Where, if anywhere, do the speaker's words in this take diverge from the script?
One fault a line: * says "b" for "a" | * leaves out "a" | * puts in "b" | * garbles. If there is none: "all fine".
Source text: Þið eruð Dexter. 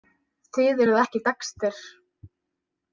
* puts in "ekki"